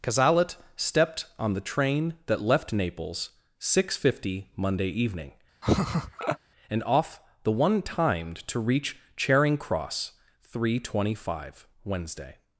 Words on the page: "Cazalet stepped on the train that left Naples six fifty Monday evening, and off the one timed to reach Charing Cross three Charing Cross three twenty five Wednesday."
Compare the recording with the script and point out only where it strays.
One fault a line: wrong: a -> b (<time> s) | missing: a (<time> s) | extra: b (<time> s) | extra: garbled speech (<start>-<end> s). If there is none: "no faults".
missing: Charing Cross three (10.8 s)